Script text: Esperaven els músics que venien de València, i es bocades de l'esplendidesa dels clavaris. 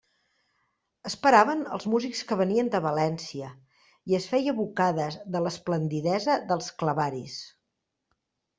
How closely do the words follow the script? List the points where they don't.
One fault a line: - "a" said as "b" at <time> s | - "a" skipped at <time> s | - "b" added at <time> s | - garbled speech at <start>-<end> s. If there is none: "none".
- "feia" added at 4.4 s